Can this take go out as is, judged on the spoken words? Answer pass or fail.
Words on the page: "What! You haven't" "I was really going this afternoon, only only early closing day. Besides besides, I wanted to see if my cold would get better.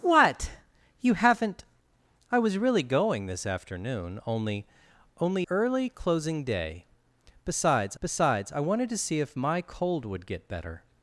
pass